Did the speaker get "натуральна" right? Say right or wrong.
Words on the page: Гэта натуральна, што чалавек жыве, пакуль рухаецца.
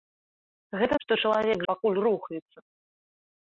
wrong